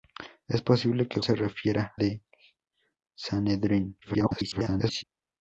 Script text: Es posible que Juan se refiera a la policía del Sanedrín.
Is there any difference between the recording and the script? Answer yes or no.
yes